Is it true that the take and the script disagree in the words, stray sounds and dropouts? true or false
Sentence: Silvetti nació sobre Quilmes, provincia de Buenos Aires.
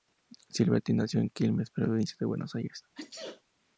true